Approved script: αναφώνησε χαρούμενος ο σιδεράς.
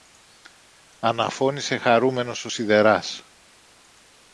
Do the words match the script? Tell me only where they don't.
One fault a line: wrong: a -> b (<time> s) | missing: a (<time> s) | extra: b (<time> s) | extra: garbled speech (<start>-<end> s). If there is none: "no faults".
no faults